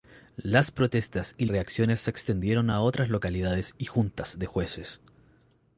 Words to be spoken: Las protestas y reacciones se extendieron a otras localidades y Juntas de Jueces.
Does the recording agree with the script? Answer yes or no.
yes